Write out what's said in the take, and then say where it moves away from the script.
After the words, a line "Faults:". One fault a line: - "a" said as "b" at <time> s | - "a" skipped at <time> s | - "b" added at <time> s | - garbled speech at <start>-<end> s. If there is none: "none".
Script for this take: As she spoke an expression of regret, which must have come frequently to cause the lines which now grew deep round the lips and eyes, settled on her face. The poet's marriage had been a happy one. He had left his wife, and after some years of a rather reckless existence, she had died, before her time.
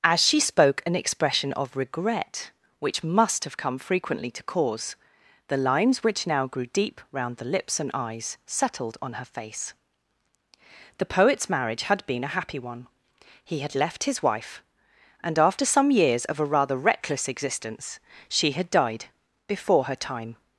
As she spoke an expression of regret, which must have come frequently to cause the lines which now grew deep round the lips and eyes, settled on her face. The poet's marriage had been a happy one. He had left his wife, and after some years of a rather reckless existence, she had died, before her time.
Faults:
none